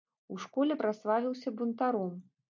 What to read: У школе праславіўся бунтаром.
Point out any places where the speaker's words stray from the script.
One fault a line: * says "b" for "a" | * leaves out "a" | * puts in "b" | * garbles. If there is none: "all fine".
all fine